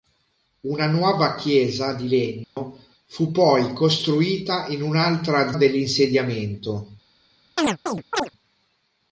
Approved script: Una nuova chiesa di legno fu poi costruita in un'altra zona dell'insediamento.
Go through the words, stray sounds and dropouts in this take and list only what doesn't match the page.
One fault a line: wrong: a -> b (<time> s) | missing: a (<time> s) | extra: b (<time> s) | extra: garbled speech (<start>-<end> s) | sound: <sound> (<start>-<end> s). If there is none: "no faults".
sound: dropout (2.4-2.6 s)
missing: zona (5.5 s)
sound: chirp (7.6-8.3 s)